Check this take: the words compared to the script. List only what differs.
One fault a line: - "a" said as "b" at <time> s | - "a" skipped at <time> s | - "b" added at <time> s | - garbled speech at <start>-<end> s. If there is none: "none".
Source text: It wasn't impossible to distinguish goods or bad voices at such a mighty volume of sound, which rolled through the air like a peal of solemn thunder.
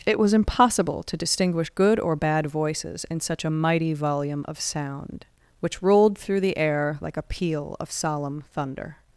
- "wasn't" said as "was" at 0.2 s
- "goods" said as "good" at 1.7 s
- "at" said as "in" at 3.1 s